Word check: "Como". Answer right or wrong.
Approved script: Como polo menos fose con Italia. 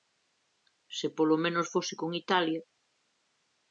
wrong